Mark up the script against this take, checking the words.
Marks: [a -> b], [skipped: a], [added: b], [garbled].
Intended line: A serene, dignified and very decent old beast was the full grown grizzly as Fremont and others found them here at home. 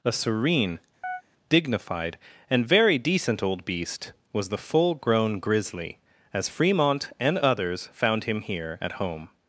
A serene, dignified and very decent old beast was the full grown grizzly as Fremont and others found [them -> him] here at home.